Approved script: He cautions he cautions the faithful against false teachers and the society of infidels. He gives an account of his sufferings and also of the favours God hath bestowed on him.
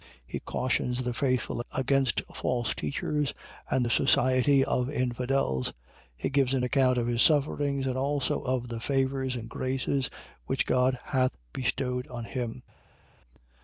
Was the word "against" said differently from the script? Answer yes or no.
no